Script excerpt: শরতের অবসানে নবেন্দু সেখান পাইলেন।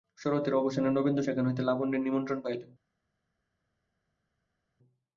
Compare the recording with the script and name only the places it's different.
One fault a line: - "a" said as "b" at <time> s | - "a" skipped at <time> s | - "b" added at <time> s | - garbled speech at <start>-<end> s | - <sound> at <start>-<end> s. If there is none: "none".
- "হইতে লাবণ্যর নিমন্ত্রণ" added at 1.4 s